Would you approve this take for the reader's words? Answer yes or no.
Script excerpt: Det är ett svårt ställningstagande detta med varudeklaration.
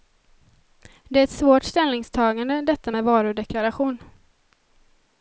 yes